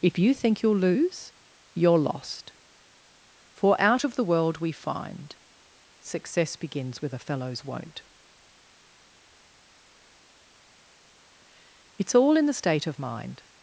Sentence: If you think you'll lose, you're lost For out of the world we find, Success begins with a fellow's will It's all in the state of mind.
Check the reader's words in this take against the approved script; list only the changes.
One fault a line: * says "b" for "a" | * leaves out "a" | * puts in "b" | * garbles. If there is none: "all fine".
* says "won't" for "will"